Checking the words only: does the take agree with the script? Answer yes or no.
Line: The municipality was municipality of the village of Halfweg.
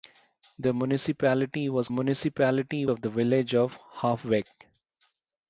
yes